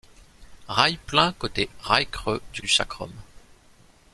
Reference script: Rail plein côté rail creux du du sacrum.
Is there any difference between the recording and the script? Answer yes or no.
no